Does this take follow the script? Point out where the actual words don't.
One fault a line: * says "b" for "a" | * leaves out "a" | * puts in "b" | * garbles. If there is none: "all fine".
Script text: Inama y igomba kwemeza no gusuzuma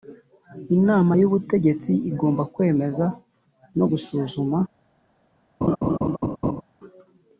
* puts in "ubutegetsi"